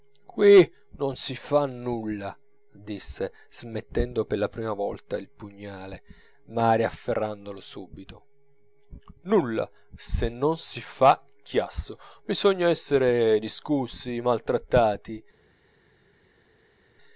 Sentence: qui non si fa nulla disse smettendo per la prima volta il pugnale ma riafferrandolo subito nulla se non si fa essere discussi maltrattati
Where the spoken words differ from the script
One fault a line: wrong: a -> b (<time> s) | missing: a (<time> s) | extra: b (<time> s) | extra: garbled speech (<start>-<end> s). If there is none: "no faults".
extra: chiasso bisogna (11.4 s)